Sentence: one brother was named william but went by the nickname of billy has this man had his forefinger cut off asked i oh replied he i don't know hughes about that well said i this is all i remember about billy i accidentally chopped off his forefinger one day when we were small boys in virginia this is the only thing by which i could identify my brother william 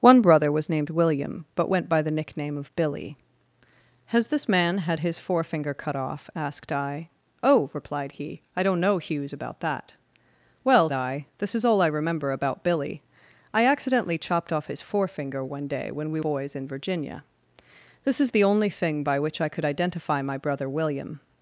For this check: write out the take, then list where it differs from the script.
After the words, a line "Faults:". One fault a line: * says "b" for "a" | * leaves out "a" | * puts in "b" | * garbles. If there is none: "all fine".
one brother was named william but went by the nickname of billy has this man had his forefinger cut off asked i oh replied he i don't know hughes about that well i this is all i remember about billy i accidentally chopped off his forefinger one day when we boys in virginia this is the only thing by which i could identify my brother william
Faults:
* leaves out "said"
* leaves out "were small"